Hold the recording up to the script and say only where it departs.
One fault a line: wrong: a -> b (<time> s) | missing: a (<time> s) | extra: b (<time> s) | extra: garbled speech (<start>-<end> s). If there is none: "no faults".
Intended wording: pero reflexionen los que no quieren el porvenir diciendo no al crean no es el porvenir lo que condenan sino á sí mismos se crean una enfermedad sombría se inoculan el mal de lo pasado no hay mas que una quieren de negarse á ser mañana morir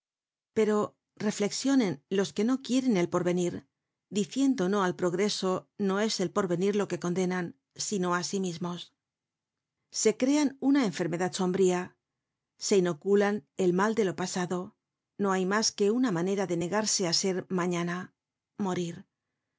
wrong: crean -> progreso (5.0 s)
wrong: quieren -> manera (16.2 s)